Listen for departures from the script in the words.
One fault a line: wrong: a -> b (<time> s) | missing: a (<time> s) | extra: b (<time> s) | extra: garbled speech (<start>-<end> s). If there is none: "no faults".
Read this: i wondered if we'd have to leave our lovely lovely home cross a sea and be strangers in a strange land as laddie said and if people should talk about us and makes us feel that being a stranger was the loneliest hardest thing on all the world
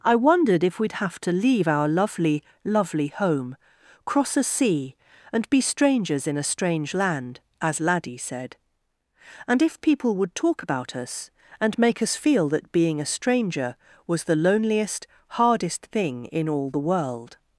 wrong: should -> would (10.2 s)
wrong: makes -> make (11.8 s)
wrong: on -> in (16.3 s)